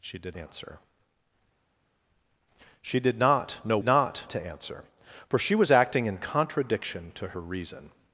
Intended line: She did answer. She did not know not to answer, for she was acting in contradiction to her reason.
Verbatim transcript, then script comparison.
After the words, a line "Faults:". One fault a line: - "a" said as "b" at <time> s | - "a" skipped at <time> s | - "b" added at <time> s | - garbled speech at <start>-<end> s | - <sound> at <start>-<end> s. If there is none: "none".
She did answer. She did not know not to answer, for she was acting in contradiction to her reason.
Faults:
none